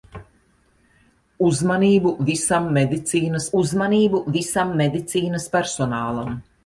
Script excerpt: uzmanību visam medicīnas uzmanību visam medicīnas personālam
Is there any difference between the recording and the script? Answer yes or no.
no